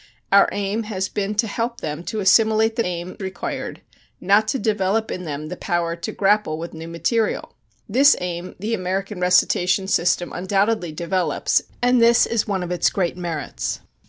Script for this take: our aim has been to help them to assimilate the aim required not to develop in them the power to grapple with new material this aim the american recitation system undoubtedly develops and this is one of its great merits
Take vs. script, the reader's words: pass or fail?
pass